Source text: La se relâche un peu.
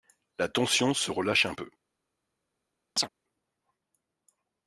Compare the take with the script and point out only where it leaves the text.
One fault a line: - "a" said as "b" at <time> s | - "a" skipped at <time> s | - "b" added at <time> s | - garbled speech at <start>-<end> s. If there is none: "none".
- "tension" added at 0.5 s